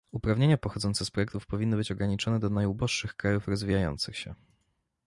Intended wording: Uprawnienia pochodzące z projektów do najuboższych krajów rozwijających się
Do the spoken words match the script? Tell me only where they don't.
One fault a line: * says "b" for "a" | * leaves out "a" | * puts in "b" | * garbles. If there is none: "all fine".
* puts in "powinny być ograniczone"